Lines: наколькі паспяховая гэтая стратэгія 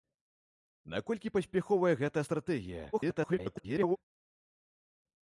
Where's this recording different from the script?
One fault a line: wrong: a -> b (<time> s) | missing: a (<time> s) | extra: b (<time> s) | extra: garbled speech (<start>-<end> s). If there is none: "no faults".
extra: garbled speech (2.9-4.0 s)